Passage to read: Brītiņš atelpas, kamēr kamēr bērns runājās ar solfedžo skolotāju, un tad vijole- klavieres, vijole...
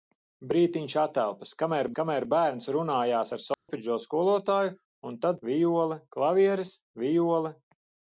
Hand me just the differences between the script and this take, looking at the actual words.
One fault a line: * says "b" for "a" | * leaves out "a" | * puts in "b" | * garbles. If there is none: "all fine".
all fine